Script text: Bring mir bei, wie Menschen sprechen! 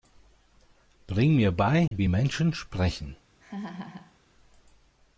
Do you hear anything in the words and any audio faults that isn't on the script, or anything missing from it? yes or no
yes